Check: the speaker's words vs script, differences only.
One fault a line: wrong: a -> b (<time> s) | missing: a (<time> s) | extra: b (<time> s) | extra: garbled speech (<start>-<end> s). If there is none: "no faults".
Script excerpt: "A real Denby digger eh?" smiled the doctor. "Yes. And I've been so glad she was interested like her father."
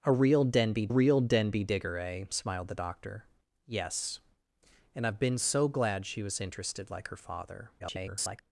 extra: real Denby (0.9 s)
extra: garbled speech (7.8-8.4 s)